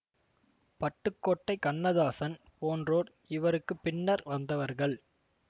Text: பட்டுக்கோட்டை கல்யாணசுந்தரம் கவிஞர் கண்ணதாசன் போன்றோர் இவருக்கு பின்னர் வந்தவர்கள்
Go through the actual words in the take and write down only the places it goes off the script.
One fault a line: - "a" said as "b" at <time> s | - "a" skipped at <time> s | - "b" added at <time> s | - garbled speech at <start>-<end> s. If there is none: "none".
- "கல்யாணசுந்தரம் கவிஞர்" skipped at 1.6 s